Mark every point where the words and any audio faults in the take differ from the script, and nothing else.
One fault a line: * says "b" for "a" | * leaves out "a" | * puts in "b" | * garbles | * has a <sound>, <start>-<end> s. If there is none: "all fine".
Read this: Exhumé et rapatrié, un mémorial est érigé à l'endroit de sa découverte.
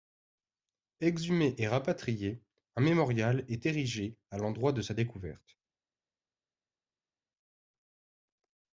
all fine